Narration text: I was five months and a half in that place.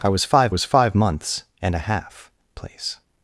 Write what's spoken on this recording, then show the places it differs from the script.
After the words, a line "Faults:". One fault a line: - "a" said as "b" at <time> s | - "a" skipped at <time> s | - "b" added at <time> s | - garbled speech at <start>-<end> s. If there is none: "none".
I was five was five months and a half place.
Faults:
- "was five" added at 0.5 s
- "in that" skipped at 2.3 s